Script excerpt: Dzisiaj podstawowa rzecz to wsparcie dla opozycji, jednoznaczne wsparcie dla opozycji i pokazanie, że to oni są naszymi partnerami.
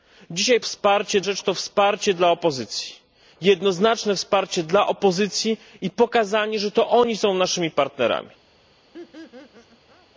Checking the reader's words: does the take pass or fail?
fail